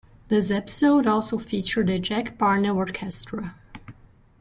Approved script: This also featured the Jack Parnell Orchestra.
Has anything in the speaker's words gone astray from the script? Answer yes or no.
yes